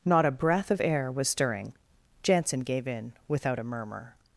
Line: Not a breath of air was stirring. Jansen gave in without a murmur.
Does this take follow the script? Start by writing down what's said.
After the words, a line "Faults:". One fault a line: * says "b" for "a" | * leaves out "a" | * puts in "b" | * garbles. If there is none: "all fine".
Not a breath of air was stirring. Jansen gave in without a murmur.
Faults:
all fine